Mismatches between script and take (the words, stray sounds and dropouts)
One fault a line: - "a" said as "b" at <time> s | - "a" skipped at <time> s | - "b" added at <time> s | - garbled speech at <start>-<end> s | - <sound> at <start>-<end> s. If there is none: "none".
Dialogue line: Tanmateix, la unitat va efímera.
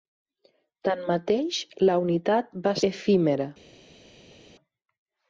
none